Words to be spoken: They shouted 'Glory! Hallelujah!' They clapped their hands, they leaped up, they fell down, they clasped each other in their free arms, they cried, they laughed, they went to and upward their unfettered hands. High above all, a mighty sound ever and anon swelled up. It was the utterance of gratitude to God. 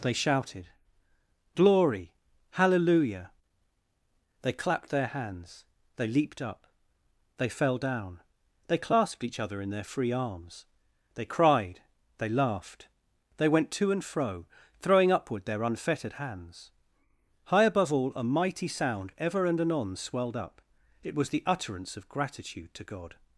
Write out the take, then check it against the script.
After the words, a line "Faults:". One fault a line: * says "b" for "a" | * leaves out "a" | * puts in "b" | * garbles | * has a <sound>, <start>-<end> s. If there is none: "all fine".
They shouted 'Glory! Hallelujah!' They clapped their hands, they leaped up, they fell down, they clasped each other in their free arms, they cried, they laughed, they went to and fro, throwing upward their unfettered hands. High above all, a mighty sound ever and anon swelled up. It was the utterance of gratitude to God.
Faults:
* puts in "fro throwing"